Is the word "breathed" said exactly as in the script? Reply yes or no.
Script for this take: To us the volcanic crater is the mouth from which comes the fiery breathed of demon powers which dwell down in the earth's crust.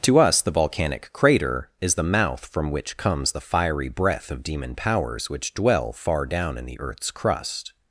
no